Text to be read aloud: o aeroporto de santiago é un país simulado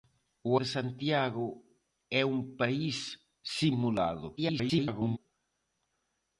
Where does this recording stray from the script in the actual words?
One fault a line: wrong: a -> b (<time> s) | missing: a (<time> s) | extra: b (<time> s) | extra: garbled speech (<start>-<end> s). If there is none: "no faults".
missing: aeroporto (0.5 s)
extra: garbled speech (4.4-5.2 s)